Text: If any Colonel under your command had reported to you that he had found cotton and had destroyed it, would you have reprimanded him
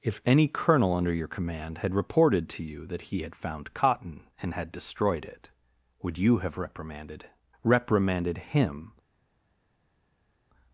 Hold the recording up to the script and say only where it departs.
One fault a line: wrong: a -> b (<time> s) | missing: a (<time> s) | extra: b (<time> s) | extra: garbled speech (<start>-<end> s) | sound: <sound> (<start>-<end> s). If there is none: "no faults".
extra: reprimanded (7.6 s)